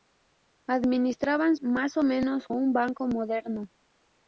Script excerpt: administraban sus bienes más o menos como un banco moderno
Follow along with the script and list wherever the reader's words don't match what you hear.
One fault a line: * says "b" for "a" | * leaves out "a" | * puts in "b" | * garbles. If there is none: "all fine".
* leaves out "sus bienes"
* leaves out "como"